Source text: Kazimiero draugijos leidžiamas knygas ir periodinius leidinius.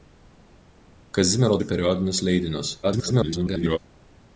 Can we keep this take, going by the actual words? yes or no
no